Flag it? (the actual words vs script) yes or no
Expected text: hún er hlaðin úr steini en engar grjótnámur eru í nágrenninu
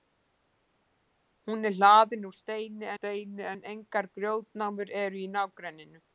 yes